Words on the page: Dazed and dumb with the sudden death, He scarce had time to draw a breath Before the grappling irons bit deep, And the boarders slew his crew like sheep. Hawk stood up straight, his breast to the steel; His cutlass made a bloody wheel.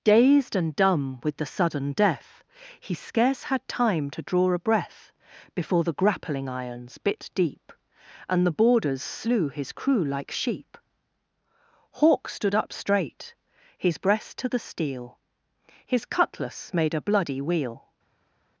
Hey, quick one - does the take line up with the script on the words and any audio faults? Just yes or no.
yes